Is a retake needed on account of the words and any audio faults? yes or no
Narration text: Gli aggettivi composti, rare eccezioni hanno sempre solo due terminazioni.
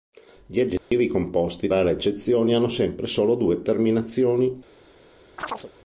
yes